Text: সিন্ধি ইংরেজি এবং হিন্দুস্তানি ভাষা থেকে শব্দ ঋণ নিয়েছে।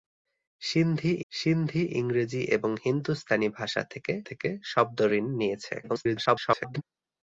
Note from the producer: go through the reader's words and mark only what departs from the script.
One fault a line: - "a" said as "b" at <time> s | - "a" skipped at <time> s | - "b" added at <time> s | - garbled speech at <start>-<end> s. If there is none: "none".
- "সিন্ধি" added at 1.3 s
- "থেকে" added at 4.3 s
- garbled speech at 5.8-6.8 s